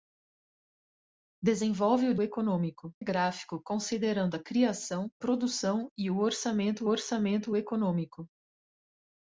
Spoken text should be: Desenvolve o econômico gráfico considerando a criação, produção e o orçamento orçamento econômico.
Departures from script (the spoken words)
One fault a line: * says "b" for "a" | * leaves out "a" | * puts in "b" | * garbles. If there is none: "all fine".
all fine